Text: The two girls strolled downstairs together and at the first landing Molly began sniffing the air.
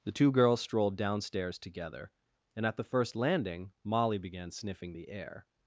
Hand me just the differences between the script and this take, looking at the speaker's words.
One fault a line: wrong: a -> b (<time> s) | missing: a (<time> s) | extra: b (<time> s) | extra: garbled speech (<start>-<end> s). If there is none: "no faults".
no faults